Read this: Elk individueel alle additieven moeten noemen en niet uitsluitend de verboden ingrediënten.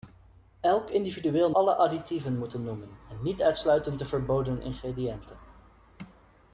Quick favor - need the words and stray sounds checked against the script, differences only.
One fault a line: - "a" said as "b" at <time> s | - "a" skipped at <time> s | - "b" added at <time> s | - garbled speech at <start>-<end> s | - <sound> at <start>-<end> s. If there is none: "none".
none